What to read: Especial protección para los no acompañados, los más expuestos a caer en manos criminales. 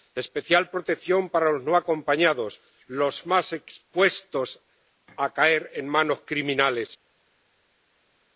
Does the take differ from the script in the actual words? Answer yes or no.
no